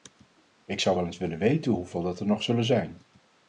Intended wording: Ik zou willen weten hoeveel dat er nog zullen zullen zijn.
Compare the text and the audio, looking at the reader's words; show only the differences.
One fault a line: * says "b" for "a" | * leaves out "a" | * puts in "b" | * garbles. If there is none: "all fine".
* puts in "wel eens"
* leaves out "zullen"